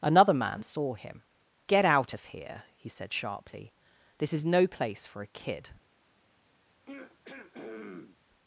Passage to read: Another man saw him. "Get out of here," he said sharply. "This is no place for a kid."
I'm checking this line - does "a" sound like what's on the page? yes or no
yes